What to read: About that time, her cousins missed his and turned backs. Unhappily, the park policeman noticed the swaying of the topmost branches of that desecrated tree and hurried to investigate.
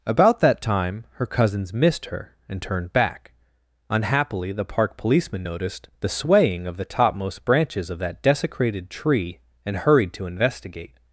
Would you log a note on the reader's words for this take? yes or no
yes